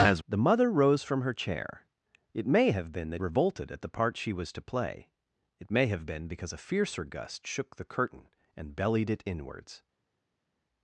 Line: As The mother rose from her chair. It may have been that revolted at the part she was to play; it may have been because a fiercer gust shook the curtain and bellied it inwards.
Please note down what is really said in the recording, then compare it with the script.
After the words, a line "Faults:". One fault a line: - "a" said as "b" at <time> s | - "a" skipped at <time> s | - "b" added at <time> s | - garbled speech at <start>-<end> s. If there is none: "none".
As The mother rose from her chair. It may have been that revolted at the part she was to play; it may have been because a fiercer gust shook the curtain and bellied it inwards.
Faults:
none